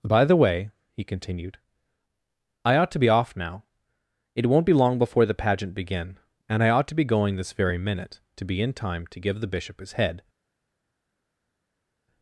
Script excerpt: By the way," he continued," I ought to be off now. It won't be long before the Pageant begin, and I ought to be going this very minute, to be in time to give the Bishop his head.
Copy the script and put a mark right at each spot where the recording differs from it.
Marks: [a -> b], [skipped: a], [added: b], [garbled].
By the way," he continued," I ought to be off now. It won't be long before the Pageant begin, and I ought to be going this very minute, to be in time to give the Bishop his head.